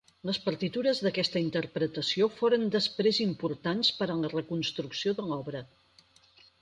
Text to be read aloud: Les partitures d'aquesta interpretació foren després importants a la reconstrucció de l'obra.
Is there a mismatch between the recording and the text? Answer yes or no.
yes